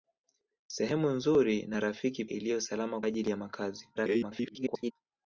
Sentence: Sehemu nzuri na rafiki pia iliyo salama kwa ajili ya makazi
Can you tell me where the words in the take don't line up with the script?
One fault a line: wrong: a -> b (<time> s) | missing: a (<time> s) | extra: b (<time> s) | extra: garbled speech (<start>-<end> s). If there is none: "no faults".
missing: pia (2.2 s)
missing: kwa (3.0 s)
extra: garbled speech (4.0-4.9 s)